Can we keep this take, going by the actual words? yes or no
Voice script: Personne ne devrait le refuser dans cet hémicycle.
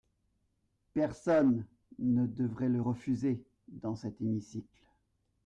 yes